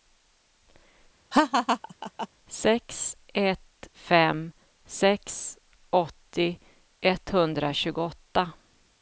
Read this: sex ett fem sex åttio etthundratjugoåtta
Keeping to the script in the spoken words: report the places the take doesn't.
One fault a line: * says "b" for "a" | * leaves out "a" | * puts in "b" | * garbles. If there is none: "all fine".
all fine